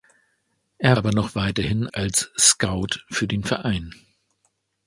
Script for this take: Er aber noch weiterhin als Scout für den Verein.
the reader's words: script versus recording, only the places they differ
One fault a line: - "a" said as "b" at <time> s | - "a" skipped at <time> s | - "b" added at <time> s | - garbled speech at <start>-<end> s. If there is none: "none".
none